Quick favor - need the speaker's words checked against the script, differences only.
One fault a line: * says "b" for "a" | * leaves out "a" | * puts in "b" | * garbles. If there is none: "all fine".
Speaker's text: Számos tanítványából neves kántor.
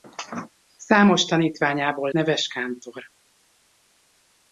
all fine